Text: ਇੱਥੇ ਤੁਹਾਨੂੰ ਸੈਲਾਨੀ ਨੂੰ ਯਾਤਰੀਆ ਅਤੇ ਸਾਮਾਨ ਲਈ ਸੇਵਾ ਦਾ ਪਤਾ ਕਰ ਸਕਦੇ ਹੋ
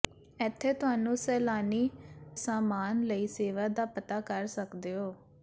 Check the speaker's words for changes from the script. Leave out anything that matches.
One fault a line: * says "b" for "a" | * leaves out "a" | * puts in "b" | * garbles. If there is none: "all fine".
* leaves out "ਨੂੰ ਯਾਤਰੀਆ ਅਤੇ"